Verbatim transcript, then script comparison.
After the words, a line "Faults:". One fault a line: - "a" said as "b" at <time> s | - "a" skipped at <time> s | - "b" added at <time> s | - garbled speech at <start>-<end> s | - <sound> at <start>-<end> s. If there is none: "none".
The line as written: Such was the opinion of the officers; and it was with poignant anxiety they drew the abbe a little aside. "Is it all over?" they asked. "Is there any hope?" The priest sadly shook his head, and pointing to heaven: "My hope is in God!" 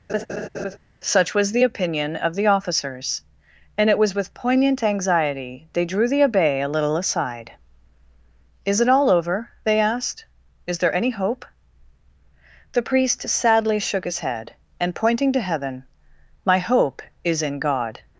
Such was the opinion of the officers; and it was with poignant anxiety they drew the abbe a little aside. "Is it all over?" they asked. "Is there any hope?" The priest sadly shook his head, and pointing to heaven: "My hope is in God!"
Faults:
- laugh at 0.1-0.8 s